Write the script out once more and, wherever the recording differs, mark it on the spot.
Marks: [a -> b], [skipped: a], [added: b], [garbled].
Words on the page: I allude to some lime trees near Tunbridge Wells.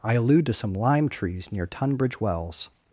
I allude to some lime trees near Tunbridge Wells.